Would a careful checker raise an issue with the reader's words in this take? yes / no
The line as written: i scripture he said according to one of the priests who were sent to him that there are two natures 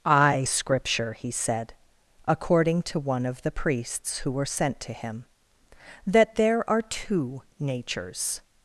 no